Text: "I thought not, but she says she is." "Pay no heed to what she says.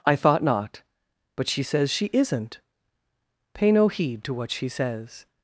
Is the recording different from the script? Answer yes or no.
yes